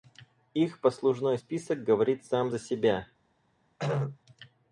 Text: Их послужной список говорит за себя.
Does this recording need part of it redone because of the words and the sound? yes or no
yes